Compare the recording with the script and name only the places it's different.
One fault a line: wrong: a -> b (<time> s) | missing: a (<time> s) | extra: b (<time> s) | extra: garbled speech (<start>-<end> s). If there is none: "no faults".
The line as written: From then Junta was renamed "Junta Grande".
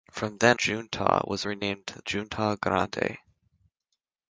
no faults